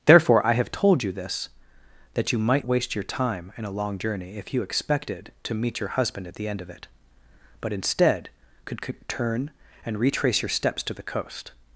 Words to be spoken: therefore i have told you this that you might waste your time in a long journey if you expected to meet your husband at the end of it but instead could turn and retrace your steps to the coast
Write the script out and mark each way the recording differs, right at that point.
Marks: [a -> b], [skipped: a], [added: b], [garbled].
therefore i have told you this that you might waste your time in a long journey if you expected to meet your husband at the end of it but instead could turn and retrace your steps to the coast